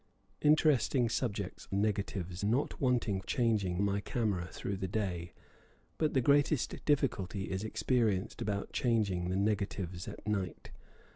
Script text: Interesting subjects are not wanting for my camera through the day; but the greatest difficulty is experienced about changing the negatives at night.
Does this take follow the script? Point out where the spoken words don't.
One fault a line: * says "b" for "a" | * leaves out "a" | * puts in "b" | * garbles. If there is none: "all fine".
* says "negatives" for "are"
* says "changing" for "for"